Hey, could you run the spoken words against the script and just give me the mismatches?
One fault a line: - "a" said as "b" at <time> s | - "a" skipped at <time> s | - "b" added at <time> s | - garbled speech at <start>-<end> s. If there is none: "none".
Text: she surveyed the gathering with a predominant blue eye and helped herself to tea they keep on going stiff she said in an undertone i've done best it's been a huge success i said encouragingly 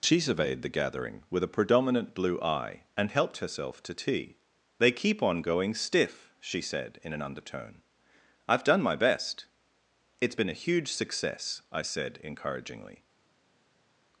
- "my" added at 8.8 s